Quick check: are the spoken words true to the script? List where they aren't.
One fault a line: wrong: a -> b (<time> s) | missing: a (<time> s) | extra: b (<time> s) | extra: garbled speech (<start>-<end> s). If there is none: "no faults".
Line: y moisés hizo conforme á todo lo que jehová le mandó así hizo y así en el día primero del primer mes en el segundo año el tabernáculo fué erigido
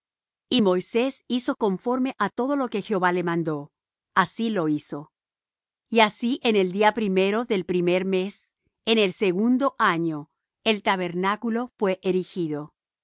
extra: lo (4.5 s)